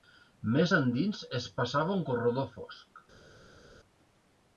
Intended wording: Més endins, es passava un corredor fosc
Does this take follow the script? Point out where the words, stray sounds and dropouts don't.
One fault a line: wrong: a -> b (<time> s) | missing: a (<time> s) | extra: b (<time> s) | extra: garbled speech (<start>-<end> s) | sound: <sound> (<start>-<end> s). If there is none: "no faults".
no faults